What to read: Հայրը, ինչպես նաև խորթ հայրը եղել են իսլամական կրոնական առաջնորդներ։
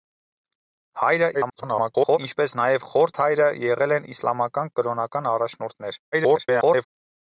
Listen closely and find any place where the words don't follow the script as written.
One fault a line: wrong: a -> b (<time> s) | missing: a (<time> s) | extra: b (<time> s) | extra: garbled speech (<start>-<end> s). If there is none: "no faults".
extra: garbled speech (1.3-2.2 s)
extra: garbled speech (6.1-6.9 s)